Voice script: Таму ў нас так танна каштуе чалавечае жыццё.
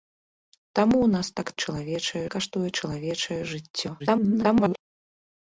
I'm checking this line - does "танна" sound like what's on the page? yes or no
no